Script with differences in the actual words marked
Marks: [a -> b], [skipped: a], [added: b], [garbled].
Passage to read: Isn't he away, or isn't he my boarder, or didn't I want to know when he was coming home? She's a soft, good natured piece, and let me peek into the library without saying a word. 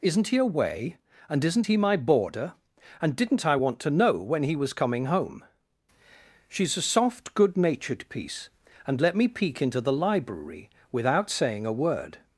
Isn't he away, [or -> and] isn't he my boarder, [or -> and] didn't I want to know when he was coming home? She's a soft, good natured piece, and let me peek into the library without saying a word.